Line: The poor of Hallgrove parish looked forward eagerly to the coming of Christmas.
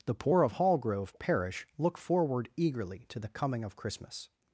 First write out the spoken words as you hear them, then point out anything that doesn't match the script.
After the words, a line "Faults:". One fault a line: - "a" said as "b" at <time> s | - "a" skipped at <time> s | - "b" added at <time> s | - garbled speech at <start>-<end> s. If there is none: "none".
The poor of Hallgrove parish look forward eagerly to the coming of Christmas.
Faults:
- "looked" said as "look" at 1.8 s